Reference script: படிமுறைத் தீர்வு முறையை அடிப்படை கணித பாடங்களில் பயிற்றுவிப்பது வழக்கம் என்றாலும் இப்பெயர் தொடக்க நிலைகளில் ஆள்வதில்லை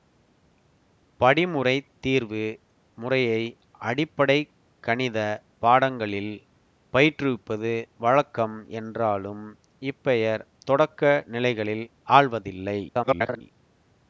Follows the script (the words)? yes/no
no